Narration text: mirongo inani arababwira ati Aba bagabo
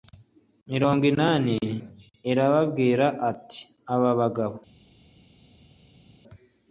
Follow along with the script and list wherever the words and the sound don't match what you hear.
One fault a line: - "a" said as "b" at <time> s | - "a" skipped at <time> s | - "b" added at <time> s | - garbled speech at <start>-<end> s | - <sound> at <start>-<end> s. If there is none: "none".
none